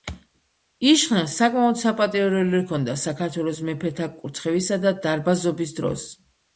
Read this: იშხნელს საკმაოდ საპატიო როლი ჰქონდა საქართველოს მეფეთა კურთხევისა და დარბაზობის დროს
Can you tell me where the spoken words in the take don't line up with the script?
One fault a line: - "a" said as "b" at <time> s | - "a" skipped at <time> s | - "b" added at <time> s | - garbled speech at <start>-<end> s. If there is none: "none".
none